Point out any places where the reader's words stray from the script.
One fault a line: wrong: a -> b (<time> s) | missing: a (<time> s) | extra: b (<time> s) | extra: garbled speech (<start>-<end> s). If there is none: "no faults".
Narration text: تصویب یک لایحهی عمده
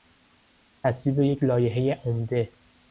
no faults